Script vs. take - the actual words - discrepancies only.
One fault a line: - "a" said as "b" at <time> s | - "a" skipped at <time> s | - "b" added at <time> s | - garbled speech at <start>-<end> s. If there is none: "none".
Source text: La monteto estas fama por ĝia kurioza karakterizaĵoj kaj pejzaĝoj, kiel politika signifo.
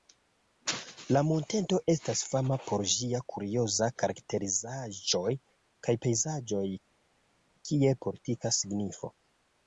none